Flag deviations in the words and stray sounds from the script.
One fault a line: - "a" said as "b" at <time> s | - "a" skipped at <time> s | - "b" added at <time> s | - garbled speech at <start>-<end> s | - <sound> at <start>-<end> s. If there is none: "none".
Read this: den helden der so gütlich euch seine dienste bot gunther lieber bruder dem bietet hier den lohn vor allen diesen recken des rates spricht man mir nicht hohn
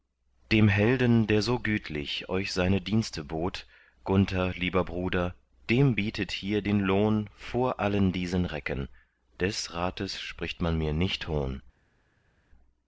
- "den" said as "dem" at 0.5 s